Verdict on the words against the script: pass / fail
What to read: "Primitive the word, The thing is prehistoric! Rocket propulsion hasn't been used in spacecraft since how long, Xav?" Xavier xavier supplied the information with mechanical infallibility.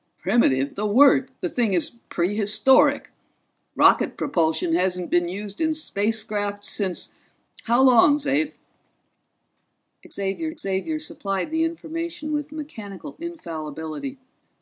pass